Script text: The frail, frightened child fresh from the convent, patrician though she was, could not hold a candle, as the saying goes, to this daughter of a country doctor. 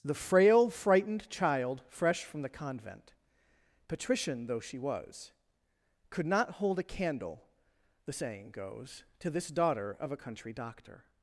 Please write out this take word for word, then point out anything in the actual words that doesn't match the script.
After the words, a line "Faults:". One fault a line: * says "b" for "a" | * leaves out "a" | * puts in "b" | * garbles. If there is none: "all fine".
The frail, frightened child fresh from the convent, patrician though she was, could not hold a candle, the saying goes, to this daughter of a country doctor.
Faults:
* leaves out "as"